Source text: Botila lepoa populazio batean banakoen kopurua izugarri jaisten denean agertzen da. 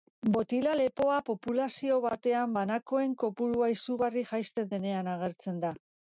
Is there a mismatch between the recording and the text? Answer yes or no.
no